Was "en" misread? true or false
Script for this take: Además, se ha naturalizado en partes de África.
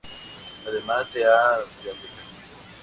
true